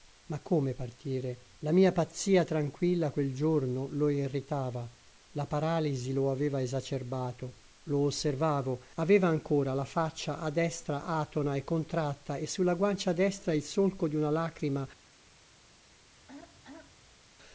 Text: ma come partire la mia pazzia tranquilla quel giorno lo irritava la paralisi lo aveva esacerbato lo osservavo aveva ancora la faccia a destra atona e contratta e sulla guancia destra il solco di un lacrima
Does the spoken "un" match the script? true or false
false